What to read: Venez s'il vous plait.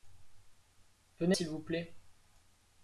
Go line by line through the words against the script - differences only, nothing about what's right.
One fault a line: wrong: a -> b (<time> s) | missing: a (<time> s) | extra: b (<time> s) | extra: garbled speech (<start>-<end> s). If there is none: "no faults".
no faults